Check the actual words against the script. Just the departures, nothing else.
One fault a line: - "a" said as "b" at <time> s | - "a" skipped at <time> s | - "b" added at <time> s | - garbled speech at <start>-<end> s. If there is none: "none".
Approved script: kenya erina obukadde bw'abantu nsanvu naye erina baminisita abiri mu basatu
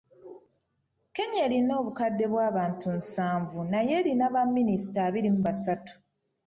none